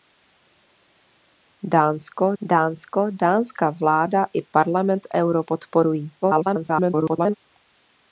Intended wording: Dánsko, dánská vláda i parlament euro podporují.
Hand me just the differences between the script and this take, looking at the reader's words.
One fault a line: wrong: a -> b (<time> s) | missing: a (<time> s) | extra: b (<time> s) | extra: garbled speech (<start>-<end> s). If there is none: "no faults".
extra: dánsko (2.4 s)
extra: garbled speech (6.2-7.3 s)